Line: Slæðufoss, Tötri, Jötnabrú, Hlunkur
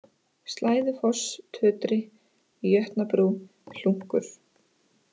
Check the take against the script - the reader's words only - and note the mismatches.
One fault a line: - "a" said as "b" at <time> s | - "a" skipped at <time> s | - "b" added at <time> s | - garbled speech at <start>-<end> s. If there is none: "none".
none